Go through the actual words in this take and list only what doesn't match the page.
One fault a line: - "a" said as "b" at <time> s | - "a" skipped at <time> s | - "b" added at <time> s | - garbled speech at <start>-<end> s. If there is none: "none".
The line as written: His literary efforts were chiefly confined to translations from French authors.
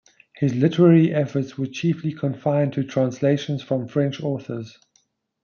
none